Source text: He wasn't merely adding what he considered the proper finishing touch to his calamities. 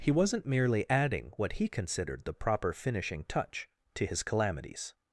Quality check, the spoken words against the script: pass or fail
pass